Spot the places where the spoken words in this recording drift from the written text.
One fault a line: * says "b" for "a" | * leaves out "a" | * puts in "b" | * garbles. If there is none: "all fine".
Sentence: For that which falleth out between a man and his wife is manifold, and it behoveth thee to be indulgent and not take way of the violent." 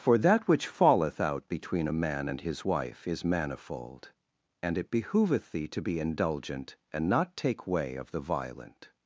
all fine